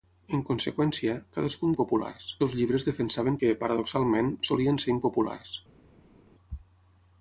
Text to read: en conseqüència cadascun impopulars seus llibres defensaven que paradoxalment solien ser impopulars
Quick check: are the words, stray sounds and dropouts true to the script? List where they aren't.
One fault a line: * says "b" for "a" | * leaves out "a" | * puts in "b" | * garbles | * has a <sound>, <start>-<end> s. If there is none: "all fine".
all fine